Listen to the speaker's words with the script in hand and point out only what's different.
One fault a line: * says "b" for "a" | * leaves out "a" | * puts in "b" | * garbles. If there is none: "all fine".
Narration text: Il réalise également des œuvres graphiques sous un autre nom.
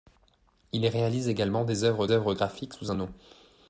* puts in "œuvres"
* leaves out "autre"